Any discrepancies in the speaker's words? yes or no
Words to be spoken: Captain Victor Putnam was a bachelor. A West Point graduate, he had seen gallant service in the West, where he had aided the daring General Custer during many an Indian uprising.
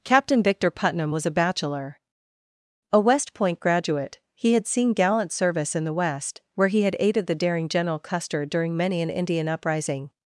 no